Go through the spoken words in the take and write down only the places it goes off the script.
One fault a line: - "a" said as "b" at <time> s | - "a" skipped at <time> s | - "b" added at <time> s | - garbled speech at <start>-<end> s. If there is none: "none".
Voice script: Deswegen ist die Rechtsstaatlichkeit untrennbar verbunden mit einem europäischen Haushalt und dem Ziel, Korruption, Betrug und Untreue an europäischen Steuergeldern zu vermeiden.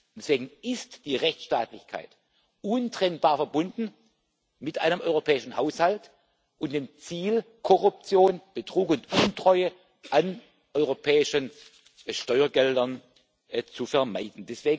none